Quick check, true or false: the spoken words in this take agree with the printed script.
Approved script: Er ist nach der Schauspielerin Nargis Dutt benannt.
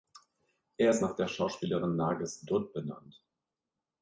true